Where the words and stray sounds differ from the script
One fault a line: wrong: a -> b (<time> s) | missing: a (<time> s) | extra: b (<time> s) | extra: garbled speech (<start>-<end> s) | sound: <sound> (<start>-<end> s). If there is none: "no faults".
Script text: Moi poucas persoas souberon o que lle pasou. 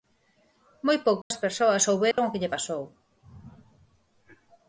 sound: dropout (1.2-1.3 s)
sound: dropout (2.1-2.2 s)